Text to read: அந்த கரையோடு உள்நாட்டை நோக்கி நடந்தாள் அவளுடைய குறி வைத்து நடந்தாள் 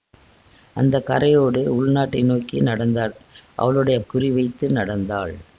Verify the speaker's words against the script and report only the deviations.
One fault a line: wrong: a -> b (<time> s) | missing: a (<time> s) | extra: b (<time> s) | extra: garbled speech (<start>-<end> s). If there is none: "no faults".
no faults